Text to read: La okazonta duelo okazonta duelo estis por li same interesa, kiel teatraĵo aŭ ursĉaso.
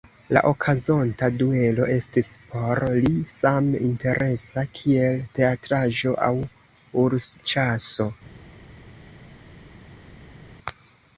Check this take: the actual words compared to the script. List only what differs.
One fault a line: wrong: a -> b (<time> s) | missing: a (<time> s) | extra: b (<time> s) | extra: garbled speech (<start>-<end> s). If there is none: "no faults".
missing: okazonta duelo (1.9 s)